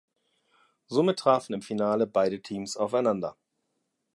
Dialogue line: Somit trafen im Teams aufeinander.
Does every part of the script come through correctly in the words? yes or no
no